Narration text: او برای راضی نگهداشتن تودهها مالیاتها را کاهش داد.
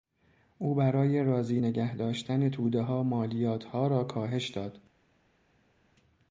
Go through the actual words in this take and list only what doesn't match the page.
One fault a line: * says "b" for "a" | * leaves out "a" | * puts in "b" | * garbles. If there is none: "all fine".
all fine